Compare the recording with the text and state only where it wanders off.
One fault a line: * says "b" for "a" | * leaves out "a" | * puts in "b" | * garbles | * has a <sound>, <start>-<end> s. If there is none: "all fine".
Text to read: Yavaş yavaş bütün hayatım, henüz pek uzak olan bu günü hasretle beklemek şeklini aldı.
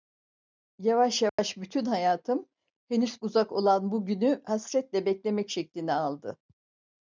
* has a dropout, 1.3-1.4 s
* leaves out "pek"